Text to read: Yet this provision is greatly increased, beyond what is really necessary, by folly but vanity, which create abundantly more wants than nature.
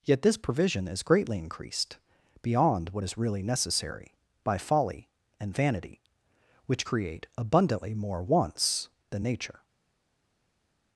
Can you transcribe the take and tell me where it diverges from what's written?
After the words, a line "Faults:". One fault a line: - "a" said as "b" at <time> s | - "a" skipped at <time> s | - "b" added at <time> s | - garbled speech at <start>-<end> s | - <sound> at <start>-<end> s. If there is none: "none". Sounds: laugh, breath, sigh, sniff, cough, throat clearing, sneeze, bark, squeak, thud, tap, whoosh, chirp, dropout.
Yet this provision is greatly increased, beyond what is really necessary, by folly and vanity, which create abundantly more wants than nature.
Faults:
- "but" said as "and" at 5.4 s